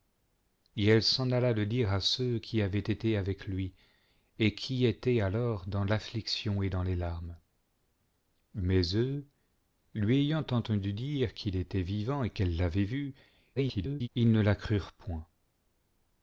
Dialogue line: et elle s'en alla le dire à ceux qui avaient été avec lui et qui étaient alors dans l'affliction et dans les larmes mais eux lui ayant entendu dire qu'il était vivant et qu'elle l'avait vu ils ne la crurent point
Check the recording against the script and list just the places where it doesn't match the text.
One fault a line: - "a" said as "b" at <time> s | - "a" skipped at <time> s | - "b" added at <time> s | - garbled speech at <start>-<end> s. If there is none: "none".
- garbled speech at 13.6-14.1 s